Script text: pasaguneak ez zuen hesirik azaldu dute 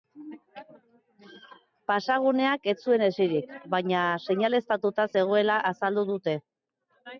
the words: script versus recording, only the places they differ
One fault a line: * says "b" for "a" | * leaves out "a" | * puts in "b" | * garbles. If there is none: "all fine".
* puts in "baina seinaleztatuta zegoela"